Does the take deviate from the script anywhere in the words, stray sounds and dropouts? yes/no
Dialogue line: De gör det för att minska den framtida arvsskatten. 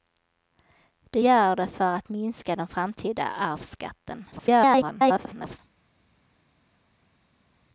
yes